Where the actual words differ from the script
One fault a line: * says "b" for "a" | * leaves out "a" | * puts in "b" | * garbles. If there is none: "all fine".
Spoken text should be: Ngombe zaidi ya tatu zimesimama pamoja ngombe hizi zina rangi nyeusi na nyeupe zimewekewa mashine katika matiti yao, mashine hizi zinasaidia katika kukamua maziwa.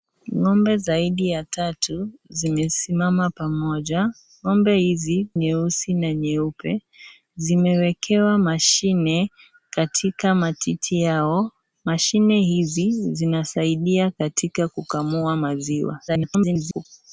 * leaves out "zina rangi"
* garbles